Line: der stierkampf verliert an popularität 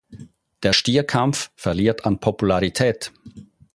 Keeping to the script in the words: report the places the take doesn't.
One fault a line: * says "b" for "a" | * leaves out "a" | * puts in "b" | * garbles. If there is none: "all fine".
all fine